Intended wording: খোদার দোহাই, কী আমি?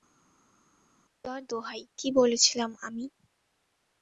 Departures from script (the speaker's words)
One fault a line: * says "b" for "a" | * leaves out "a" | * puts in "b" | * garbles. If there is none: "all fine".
* puts in "বলেছিলাম"